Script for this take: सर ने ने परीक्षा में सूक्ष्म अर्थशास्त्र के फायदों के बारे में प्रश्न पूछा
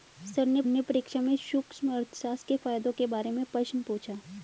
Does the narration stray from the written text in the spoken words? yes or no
no